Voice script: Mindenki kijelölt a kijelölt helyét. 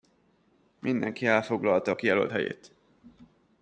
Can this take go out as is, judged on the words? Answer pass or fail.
fail